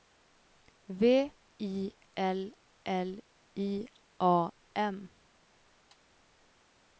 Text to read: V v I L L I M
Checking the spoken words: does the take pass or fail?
fail